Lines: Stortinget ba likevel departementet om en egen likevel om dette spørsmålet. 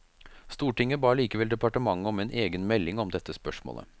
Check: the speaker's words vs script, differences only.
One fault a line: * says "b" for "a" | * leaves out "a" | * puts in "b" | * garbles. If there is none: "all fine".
* says "melding" for "likevel"